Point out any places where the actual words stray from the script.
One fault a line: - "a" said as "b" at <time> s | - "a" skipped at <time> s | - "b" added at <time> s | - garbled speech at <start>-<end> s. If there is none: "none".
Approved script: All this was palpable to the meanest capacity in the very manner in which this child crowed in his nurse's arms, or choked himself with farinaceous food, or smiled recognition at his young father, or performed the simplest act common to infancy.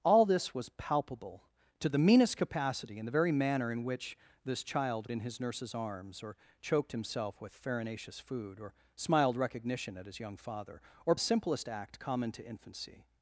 - "crowed" skipped at 5.1 s
- "performed" skipped at 11.2 s